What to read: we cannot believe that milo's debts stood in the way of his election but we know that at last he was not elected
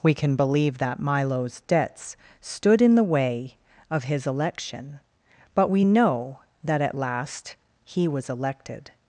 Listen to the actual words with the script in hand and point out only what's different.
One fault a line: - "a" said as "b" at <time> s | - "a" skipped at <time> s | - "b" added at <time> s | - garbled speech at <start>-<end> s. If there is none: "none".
- "cannot" said as "can" at 0.1 s
- "not" skipped at 8.3 s